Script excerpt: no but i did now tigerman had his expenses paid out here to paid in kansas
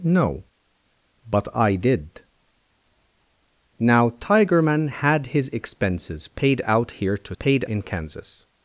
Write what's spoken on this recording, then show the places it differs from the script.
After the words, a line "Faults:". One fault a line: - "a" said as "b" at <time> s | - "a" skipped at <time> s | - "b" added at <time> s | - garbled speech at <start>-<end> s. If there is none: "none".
no but i did now tigerman had his expenses paid out here to paid in kansas
Faults:
none